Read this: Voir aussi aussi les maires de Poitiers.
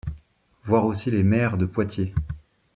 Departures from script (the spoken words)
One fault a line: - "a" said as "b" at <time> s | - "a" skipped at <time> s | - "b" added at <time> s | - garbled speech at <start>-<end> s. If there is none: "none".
- "aussi" skipped at 1.1 s